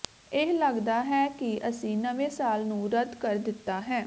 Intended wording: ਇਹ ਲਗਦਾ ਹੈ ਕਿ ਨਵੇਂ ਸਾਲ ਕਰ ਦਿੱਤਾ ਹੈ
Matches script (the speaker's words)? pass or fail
fail